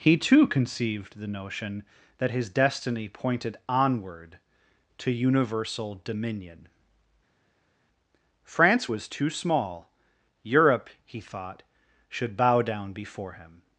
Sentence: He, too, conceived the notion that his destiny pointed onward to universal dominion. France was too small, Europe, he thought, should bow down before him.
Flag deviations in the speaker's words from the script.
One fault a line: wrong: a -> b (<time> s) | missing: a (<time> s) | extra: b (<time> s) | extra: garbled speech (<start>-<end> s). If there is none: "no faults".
no faults